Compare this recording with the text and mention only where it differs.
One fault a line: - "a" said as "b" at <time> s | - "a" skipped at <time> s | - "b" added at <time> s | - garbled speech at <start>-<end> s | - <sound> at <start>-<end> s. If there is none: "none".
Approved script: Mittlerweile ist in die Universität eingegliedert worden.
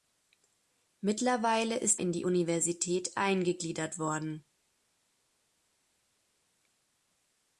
none